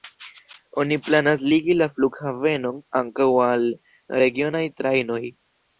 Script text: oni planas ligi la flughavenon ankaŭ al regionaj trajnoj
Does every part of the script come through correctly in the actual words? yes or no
yes